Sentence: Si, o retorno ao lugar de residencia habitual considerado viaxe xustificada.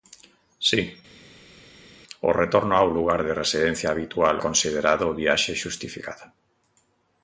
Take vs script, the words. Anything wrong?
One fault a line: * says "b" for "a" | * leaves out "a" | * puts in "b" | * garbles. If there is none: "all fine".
all fine